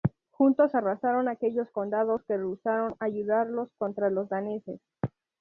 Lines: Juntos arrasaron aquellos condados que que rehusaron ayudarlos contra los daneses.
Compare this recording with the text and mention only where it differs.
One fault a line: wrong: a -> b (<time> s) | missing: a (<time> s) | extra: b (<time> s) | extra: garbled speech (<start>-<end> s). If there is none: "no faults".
missing: que (2.4 s)